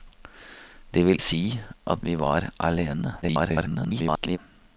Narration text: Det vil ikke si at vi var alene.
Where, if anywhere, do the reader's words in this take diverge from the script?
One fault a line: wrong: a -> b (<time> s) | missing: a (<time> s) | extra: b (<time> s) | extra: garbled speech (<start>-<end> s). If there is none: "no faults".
missing: ikke (1.2 s)
extra: garbled speech (3.2-4.4 s)